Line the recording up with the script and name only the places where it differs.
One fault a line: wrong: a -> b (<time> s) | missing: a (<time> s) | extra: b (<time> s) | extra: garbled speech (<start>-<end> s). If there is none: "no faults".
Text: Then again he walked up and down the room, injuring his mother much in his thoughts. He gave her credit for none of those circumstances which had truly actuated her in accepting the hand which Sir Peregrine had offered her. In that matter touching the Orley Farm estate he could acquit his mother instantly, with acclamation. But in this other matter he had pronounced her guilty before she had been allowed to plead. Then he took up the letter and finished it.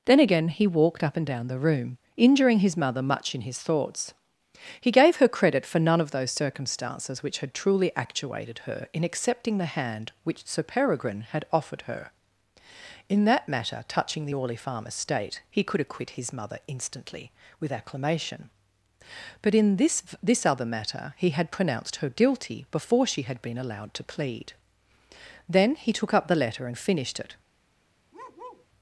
extra: this (20.2 s)